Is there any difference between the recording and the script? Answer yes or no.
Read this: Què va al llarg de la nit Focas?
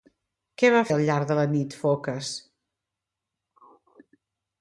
no